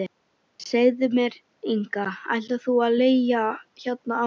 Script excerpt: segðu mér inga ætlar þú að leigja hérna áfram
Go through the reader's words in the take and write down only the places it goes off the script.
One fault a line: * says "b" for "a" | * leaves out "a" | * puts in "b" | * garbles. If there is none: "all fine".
all fine